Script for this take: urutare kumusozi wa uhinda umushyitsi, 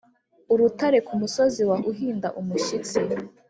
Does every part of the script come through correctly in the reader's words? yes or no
yes